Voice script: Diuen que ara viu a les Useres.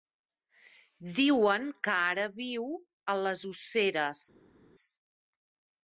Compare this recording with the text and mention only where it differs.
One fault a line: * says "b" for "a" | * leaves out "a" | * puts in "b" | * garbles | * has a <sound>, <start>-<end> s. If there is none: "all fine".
all fine